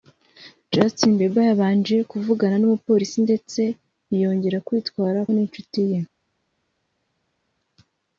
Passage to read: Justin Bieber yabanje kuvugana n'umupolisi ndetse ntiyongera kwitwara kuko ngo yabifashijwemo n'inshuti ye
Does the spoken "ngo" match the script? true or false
false